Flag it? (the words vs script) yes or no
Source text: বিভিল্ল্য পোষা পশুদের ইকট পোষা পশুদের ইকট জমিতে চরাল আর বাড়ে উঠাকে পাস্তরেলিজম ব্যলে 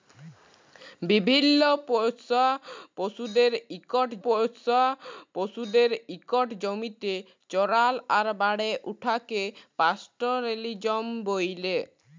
no